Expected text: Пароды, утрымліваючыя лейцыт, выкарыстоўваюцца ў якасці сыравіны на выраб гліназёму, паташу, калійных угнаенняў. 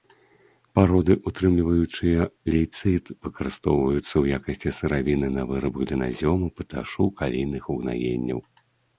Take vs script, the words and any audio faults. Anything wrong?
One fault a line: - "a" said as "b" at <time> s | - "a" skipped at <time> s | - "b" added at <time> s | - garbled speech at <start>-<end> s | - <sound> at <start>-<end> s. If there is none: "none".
none